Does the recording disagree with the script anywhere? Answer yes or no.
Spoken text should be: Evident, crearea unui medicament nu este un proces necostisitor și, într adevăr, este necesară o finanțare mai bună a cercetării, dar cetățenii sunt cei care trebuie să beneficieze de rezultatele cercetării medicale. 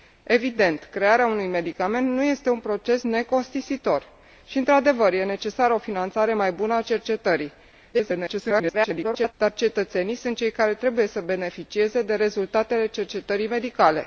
yes